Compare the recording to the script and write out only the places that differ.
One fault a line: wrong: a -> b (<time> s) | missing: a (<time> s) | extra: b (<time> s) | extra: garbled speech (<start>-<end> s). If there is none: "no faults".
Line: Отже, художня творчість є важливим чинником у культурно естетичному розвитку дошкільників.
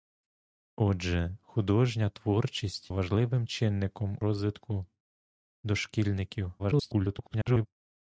missing: є (2.9 s)
missing: у культурно естетичному (4.2 s)
extra: garbled speech (6.6-7.7 s)